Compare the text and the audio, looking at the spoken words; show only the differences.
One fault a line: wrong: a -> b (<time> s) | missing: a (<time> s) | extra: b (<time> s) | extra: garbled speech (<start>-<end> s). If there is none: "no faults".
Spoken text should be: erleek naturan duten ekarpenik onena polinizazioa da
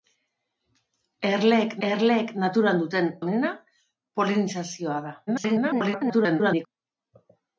extra: erleek (1.9 s)
missing: ekarpenik (3.1 s)
extra: garbled speech (5.3-6.7 s)